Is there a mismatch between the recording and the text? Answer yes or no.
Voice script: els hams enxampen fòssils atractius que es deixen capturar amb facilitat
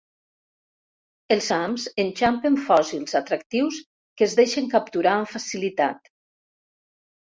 no